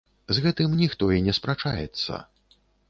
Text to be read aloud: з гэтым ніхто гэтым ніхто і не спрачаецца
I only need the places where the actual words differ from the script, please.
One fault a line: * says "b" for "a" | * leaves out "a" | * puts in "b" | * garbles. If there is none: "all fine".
* leaves out "гэтым ніхто"